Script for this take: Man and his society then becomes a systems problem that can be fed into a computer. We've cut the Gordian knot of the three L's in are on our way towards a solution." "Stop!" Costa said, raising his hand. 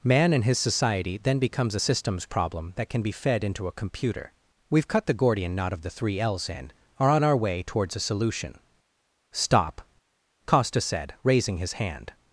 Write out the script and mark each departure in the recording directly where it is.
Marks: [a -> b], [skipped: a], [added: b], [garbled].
Man and his society then becomes a systems problem that can be fed into a computer. We've cut the Gordian knot of the three L's in are on our way towards a solution." "Stop!" Costa said, raising his hand.